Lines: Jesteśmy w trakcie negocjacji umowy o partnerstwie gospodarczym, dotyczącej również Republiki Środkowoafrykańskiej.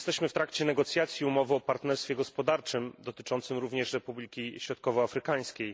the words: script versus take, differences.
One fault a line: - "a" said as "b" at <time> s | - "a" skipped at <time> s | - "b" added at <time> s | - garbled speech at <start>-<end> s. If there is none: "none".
none